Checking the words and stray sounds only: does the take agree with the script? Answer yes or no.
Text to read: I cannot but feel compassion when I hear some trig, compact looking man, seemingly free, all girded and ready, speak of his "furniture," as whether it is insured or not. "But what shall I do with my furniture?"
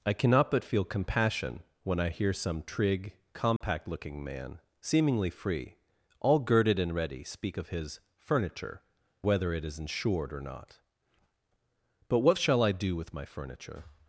no